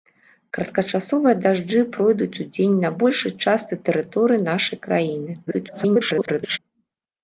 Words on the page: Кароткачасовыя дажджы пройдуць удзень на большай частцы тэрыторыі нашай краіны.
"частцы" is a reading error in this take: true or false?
false